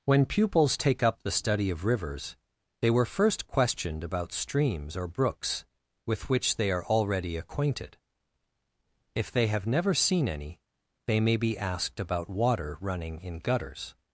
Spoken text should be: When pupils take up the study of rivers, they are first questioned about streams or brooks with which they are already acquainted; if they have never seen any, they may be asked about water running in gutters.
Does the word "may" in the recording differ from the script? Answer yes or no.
no